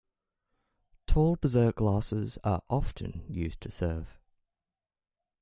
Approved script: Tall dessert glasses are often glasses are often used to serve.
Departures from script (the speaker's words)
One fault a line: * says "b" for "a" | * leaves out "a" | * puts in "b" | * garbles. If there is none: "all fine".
* leaves out "glasses are often"